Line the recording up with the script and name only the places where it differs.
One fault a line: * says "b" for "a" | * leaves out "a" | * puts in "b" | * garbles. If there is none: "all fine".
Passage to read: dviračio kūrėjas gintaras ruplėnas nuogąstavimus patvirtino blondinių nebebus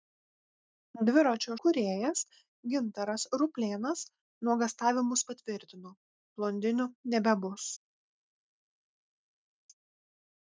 all fine